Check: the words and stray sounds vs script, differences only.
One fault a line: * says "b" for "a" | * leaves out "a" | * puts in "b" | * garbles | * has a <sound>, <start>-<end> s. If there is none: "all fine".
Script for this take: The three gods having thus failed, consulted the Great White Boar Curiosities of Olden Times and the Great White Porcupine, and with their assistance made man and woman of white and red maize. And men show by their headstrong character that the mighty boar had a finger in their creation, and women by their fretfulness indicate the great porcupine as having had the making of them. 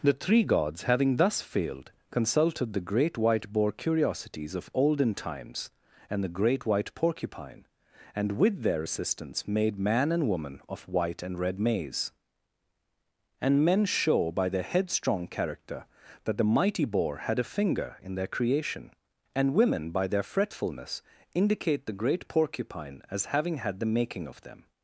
all fine